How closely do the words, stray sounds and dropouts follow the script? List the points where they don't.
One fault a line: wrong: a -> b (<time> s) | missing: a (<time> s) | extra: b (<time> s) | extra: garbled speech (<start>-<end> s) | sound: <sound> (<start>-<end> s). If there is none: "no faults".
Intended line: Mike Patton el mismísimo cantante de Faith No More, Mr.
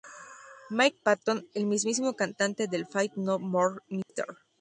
sound: dropout (4.0-4.1 s)